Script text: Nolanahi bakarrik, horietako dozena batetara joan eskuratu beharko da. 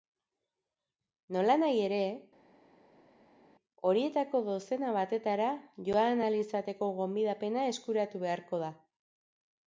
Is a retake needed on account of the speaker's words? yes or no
yes